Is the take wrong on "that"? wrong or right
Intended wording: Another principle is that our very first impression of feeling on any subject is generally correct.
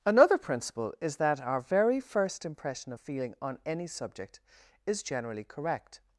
right